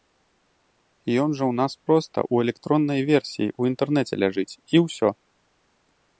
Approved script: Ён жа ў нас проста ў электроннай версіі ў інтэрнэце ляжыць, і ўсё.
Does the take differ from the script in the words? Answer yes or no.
no